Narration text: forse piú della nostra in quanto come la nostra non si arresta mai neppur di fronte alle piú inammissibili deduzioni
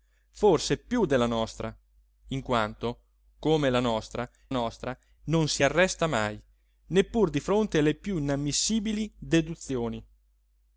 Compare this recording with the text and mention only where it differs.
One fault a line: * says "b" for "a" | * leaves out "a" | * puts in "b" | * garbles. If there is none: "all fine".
* puts in "nostra"